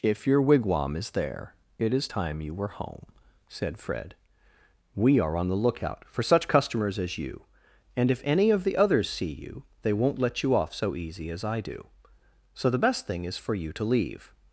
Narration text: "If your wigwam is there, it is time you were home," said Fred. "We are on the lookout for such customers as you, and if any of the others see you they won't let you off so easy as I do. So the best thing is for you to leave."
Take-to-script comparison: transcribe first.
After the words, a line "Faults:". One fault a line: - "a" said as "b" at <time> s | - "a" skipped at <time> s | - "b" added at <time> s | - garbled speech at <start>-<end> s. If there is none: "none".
"If your wigwam is there, it is time you were home," said Fred. "We are on the lookout for such customers as you, and if any of the others see you they won't let you off so easy as I do. So the best thing is for you to leave."
Faults:
none